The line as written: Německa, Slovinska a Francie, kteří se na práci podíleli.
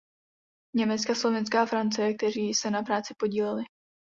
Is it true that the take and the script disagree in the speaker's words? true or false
false